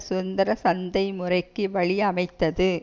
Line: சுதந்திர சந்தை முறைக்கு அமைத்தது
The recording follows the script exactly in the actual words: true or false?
false